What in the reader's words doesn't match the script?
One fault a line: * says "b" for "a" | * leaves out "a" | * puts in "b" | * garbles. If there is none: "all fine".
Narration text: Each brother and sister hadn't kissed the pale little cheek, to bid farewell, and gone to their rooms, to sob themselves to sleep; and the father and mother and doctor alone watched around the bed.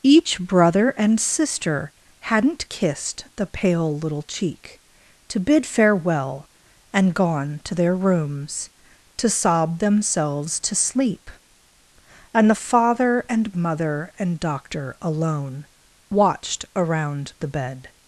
all fine